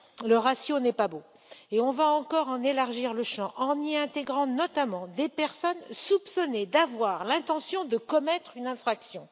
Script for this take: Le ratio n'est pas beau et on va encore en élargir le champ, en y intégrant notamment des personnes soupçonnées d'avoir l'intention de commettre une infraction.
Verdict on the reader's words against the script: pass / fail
pass